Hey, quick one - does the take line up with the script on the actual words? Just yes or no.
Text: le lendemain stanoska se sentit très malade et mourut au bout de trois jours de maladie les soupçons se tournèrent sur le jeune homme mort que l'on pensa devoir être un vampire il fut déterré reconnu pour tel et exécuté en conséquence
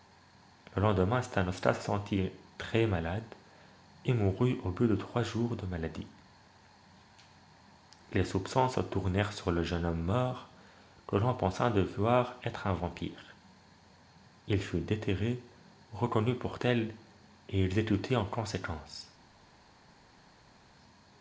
yes